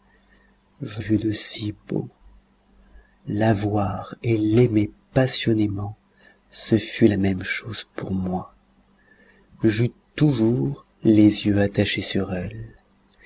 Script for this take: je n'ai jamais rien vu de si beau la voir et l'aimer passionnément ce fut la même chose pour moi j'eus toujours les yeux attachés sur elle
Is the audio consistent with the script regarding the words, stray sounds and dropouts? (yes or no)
no